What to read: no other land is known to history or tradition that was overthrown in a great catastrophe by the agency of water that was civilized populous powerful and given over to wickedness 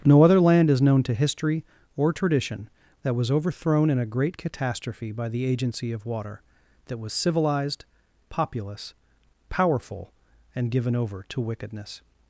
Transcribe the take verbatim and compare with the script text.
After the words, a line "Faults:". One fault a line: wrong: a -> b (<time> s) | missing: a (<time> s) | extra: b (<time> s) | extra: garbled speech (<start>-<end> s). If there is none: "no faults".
no other land is known to history or tradition that was overthrown in a great catastrophe by the agency of water that was civilized populous powerful and given over to wickedness
Faults:
no faults